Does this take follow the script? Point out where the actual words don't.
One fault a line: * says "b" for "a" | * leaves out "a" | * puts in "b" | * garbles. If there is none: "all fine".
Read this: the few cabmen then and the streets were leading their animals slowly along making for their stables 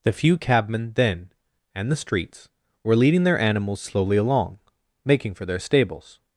all fine